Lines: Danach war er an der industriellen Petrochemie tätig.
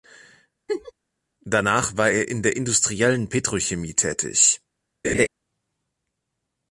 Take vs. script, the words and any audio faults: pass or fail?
fail